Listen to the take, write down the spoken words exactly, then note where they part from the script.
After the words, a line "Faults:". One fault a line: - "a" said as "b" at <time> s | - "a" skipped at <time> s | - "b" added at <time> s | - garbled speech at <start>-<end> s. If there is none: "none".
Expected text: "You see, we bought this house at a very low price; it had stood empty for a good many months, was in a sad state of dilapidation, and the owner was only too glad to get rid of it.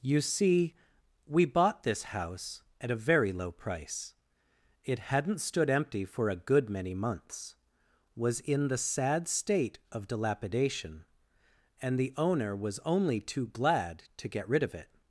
"You see, we bought this house at a very low price; it hadn't stood empty for a good many months, was in the sad state of dilapidation, and the owner was only too glad to get rid of it.
Faults:
- "had" said as "hadn't" at 5.0 s
- "a" said as "the" at 8.7 s